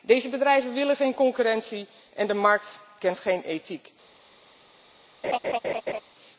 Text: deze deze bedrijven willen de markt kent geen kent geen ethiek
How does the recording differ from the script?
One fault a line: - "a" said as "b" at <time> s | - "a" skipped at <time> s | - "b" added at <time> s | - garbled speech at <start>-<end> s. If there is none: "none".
- "deze" skipped at 0.3 s
- "geen concurrentie en" added at 0.9 s
- "kent geen" skipped at 3.4 s